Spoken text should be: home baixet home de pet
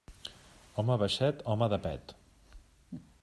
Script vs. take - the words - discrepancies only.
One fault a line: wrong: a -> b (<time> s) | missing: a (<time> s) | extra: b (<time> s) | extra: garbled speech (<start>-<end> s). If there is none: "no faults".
no faults